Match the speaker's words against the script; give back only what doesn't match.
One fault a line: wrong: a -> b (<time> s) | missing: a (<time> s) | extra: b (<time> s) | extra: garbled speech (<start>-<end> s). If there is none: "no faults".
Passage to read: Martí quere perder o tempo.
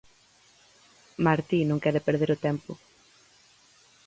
extra: non (1.6 s)